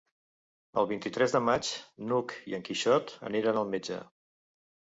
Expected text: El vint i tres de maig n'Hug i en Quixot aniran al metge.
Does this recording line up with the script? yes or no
yes